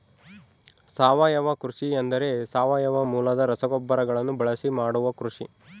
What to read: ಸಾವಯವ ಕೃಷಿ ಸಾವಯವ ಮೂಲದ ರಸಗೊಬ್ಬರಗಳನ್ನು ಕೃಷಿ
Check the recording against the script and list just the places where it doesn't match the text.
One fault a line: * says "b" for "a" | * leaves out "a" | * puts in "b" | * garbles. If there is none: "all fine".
* puts in "ಎಂದರೆ"
* puts in "ಬಳಸಿ ಮಾಡುವ"